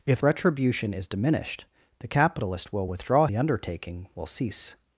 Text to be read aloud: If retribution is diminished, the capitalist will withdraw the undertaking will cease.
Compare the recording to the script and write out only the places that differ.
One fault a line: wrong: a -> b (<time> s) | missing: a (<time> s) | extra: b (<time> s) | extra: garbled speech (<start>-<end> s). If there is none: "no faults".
no faults